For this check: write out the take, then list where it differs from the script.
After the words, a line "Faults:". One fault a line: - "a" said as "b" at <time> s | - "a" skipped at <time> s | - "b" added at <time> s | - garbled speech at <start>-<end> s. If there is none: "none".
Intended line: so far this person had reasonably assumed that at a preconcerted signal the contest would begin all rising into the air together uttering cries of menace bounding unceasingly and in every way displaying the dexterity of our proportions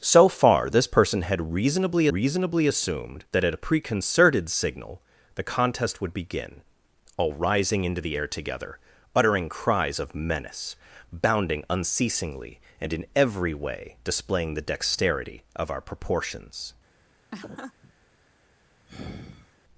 so far this person had reasonably reasonably assumed that at a preconcerted signal the contest would begin all rising into the air together uttering cries of menace bounding unceasingly and in every way displaying the dexterity of our proportions
Faults:
- "reasonably" added at 2.1 s